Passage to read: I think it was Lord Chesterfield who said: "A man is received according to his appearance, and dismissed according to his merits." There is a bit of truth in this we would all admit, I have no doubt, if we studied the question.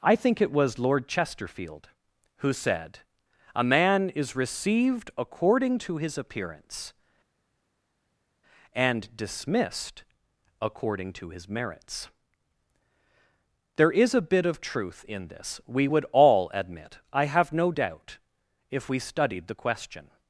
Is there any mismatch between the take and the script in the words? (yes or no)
no